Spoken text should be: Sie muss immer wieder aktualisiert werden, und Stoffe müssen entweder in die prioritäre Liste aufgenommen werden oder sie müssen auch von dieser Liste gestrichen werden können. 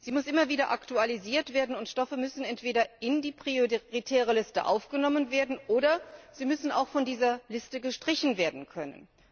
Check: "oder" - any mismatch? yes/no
no